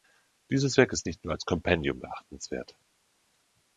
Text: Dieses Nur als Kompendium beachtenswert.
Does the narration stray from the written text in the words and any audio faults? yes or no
yes